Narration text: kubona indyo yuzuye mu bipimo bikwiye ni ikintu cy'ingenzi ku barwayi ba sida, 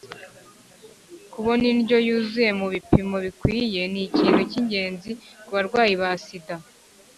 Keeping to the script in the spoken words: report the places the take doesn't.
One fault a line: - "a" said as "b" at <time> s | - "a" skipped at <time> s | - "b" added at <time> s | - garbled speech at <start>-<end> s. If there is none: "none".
none